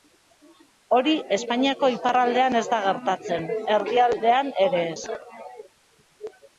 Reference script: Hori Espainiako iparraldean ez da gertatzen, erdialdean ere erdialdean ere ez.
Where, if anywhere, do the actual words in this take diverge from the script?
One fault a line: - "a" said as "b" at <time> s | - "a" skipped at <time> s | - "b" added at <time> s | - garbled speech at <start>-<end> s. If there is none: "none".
- "erdialdean ere" skipped at 4.8 s